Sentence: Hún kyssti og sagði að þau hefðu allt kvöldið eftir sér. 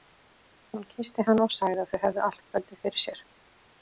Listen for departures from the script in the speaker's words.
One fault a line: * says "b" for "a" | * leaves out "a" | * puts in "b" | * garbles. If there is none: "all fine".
* puts in "hann"
* says "fyrir" for "eftir"